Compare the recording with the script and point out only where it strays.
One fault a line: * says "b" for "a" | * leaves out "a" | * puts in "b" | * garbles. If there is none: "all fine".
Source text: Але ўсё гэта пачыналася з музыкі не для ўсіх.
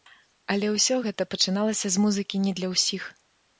all fine